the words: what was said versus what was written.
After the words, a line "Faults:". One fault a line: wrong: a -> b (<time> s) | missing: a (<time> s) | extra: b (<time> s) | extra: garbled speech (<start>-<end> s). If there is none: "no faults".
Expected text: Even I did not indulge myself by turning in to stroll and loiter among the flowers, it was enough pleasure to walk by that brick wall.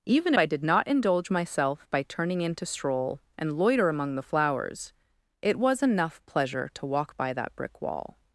Even I did not indulge myself by turning in to stroll and loiter among the flowers, it was enough pleasure to walk by that brick wall.
Faults:
no faults